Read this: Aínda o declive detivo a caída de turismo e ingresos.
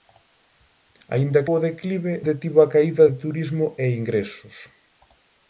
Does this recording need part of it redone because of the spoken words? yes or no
no